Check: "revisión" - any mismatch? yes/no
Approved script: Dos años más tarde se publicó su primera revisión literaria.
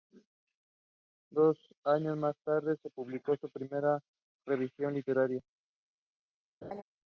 no